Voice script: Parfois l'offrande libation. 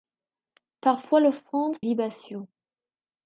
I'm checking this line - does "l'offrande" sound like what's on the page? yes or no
yes